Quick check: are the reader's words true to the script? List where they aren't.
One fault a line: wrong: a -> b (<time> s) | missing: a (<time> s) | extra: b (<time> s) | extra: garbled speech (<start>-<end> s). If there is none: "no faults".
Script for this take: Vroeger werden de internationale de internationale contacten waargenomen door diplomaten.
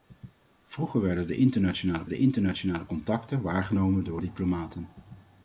no faults